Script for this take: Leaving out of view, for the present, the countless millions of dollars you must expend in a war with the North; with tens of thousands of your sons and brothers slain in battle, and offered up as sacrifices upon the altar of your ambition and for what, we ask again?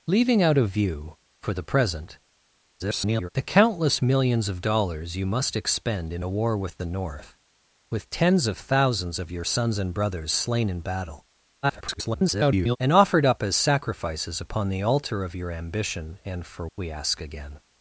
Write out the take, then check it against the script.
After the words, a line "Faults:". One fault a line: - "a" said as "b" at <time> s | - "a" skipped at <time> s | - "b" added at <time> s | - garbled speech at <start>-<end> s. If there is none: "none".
Leaving out of view, for the present, [garbled] the countless millions of dollars you must expend in a war with the North; with tens of thousands of your sons and brothers slain in battle, [garbled] and offered up as sacrifices upon the altar of your ambition and for we ask again?
Faults:
- garbled speech at 2.8-3.3 s
- garbled speech at 11.6-12.8 s
- "what" skipped at 16.7 s